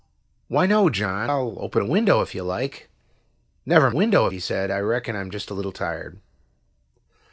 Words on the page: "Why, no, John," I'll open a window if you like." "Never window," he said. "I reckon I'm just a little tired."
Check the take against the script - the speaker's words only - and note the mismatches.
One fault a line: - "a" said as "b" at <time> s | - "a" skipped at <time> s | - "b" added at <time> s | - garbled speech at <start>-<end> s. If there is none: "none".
none